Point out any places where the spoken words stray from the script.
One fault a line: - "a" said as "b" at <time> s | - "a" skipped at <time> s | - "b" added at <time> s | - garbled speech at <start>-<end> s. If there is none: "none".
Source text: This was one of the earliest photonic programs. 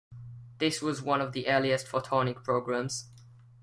none